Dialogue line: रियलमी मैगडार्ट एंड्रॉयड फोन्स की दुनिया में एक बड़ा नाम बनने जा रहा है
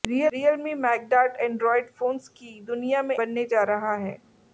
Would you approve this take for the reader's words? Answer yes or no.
no